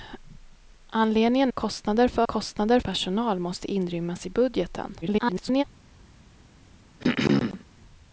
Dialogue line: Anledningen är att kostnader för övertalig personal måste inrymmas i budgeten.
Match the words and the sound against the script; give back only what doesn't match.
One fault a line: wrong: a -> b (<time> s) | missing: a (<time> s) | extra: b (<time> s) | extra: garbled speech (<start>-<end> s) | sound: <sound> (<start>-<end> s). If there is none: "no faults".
missing: är (1.5 s)
wrong: övertalig -> kostnader (2.3 s)
extra: garbled speech (5.0-5.6 s)
sound: throat clearing (7.0-7.6 s)